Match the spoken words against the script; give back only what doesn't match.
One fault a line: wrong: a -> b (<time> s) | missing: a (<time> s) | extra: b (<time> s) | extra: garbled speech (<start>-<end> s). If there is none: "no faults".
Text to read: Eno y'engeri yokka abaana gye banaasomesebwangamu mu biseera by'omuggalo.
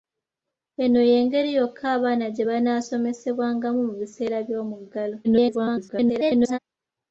extra: garbled speech (5.2-6.6 s)